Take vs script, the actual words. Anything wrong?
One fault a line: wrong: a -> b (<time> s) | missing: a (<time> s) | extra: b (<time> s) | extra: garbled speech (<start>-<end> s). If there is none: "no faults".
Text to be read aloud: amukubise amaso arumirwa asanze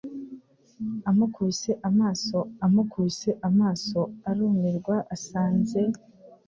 extra: amukubise amaso (2.6 s)